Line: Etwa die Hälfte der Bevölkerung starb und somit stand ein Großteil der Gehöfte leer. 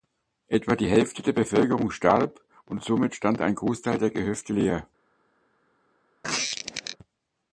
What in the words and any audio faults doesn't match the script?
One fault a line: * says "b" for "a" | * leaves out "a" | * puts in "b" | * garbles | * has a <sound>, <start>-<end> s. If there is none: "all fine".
* has a squeak, 6.2-7.0 s